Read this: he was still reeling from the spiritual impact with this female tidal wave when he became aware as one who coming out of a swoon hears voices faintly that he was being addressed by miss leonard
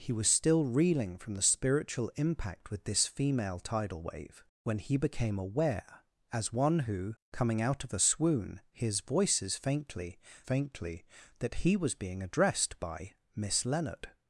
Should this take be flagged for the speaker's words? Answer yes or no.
yes